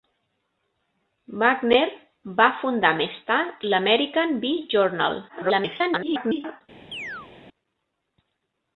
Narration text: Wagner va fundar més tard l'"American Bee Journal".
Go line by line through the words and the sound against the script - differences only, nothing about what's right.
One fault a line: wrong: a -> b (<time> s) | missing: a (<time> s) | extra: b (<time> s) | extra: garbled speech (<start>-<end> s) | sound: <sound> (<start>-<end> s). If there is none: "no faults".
extra: garbled speech (5.3-6.6 s)
sound: chirp (6.9-7.3 s)